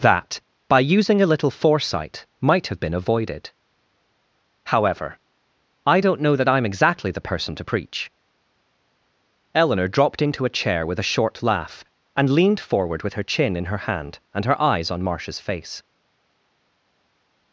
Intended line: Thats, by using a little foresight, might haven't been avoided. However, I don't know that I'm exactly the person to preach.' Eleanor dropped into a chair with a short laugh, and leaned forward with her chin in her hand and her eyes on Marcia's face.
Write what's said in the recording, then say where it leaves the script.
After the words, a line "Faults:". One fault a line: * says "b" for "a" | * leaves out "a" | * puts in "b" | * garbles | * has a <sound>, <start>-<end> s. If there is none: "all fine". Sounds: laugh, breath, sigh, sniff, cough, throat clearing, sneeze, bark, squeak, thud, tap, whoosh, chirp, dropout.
That, by using a little foresight, might have been avoided. However, I don't know that I'm exactly the person to preach.' Eleanor dropped into a chair with a short laugh, and leaned forward with her chin in her hand and her eyes on Marcia's face.
Faults:
* says "That" for "Thats"
* says "have" for "haven't"